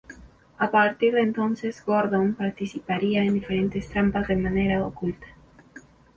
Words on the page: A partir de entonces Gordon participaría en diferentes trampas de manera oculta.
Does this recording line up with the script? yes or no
yes